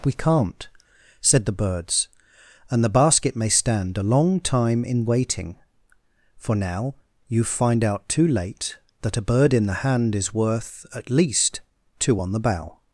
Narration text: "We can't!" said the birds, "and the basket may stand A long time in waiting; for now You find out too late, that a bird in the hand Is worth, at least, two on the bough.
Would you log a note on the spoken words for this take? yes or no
no